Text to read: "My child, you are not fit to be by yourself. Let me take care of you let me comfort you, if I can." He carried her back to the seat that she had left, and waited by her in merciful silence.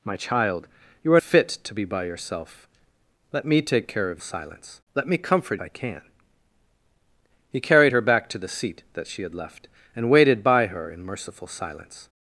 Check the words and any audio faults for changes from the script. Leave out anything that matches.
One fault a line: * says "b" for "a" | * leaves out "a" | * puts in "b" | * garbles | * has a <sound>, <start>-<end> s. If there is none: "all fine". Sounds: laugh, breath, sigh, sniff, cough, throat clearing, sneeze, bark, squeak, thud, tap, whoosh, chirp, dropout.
* leaves out "not"
* says "silence" for "you"
* leaves out "you if"